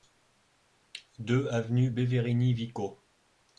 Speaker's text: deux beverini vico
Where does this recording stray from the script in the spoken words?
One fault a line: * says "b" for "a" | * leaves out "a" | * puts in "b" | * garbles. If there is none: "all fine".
* puts in "avenue"